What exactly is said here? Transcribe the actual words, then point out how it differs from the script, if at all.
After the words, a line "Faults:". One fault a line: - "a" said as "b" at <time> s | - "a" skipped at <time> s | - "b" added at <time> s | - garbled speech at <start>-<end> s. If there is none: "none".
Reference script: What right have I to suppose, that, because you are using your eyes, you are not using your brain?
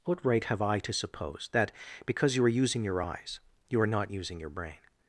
What right have I to suppose, that, because you are using your eyes, you are not using your brain?
Faults:
none